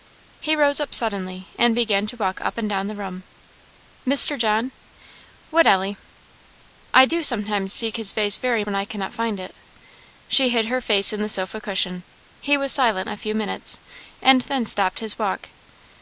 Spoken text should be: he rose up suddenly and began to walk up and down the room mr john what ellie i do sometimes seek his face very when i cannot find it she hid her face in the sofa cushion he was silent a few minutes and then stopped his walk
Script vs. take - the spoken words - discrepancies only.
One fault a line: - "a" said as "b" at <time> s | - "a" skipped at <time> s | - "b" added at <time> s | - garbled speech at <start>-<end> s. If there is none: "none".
none